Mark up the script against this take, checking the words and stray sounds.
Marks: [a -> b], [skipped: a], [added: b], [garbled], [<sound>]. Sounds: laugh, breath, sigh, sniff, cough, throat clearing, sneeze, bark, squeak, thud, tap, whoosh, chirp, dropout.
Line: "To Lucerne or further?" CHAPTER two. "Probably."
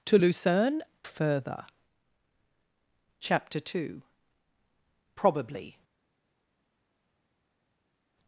"To Lucerne [skipped: or] further?" CHAPTER two. "Probably."